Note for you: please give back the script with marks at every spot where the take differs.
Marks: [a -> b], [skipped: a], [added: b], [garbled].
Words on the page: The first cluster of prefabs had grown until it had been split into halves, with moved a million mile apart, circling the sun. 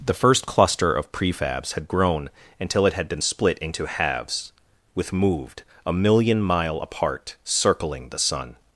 The first cluster of prefabs had grown until it had been split into halves, with moved a million mile apart, circling the sun.